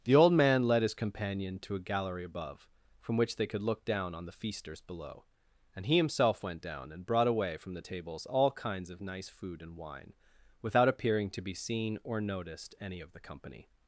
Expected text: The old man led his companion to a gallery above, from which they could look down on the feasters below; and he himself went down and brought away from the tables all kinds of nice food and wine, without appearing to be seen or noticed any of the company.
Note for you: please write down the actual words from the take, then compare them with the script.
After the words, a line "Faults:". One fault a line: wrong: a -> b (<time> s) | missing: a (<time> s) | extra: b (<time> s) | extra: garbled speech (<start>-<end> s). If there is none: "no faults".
The old man led his companion to a gallery above, from which they could look down on the feasters below; and he himself went down and brought away from the tables all kinds of nice food and wine, without appearing to be seen or noticed any of the company.
Faults:
no faults